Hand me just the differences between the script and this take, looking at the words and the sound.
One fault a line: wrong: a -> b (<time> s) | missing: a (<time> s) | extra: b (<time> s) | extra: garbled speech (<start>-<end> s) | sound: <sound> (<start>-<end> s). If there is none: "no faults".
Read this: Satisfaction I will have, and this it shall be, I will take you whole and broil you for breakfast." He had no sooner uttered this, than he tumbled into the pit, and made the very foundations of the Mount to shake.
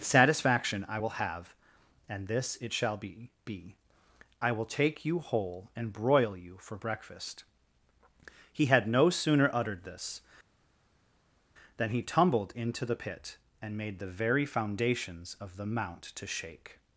extra: be (3.4 s)